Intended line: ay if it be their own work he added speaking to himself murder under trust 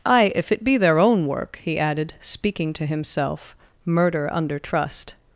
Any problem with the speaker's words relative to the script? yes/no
no